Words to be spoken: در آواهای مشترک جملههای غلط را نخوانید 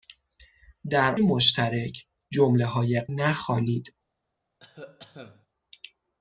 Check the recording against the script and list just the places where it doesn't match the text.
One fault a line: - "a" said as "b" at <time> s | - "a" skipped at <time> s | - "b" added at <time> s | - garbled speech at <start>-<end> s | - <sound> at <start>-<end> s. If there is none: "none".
- "آواهای" skipped at 1.1 s
- "غلط را" skipped at 3.0 s
- cough at 4.6-5.5 s